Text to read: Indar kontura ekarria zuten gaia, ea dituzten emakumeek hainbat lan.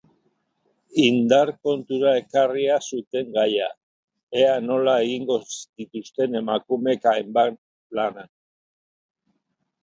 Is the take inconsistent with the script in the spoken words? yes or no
yes